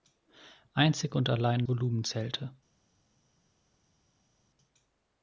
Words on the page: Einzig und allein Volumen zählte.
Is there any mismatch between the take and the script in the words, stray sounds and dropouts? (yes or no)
no